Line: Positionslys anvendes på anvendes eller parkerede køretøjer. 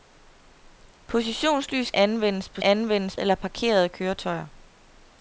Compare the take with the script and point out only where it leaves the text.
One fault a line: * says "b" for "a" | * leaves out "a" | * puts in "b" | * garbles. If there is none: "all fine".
all fine